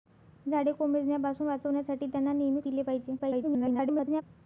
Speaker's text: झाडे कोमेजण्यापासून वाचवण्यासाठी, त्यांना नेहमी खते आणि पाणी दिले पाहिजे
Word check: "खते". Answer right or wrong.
wrong